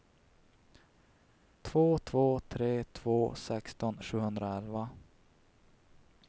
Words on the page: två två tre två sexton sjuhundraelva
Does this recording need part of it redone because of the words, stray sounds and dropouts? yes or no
no